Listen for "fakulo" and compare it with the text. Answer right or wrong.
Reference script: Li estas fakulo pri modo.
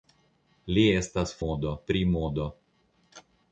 wrong